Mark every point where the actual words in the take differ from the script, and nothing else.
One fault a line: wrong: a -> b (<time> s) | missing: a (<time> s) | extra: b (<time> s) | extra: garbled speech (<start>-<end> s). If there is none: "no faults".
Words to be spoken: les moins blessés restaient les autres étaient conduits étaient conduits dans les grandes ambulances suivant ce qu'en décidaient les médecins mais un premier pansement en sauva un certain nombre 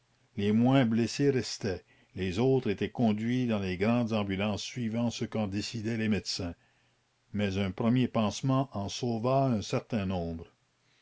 missing: étaient conduits (3.5 s)